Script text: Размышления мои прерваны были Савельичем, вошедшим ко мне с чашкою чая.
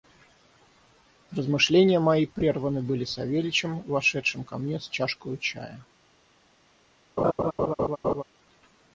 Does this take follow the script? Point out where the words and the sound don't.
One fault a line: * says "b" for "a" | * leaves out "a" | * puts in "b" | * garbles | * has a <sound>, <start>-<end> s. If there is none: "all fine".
* has a laugh, 7.2-8.2 s